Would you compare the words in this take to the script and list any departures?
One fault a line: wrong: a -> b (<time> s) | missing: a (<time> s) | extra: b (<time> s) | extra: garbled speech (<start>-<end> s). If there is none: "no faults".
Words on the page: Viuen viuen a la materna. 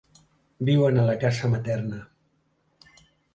missing: viuen (1.0 s)
extra: casa (1.2 s)